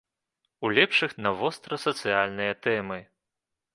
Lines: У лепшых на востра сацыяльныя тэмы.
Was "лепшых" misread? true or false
false